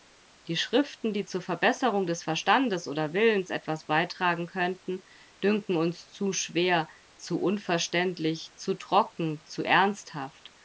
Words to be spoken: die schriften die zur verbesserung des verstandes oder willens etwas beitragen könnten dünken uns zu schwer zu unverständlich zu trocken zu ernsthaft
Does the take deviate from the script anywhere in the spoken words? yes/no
no